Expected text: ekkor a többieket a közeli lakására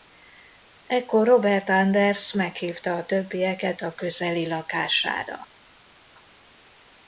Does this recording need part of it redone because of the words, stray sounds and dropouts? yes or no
yes